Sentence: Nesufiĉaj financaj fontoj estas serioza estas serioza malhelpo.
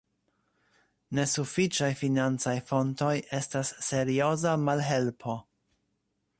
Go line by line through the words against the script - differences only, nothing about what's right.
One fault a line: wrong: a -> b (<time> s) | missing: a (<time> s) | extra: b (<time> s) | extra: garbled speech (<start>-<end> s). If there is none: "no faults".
missing: estas serioza (4.6 s)